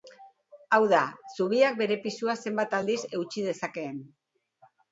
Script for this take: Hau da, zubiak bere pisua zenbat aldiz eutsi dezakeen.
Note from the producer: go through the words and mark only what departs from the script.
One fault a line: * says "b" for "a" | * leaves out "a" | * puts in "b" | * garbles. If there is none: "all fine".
all fine